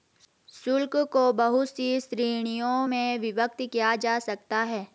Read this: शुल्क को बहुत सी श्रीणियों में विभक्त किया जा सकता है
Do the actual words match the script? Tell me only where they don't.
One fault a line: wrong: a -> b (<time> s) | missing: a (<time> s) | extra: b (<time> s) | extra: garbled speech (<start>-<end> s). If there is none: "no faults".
no faults